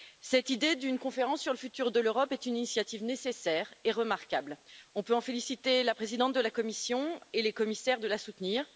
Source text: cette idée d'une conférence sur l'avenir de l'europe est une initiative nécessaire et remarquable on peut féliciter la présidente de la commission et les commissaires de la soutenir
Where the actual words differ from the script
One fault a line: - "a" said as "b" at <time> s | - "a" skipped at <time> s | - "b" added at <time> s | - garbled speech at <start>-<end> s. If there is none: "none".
none